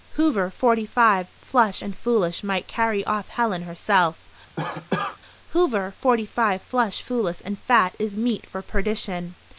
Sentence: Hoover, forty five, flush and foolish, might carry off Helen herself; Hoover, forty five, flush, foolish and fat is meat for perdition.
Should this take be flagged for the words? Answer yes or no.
no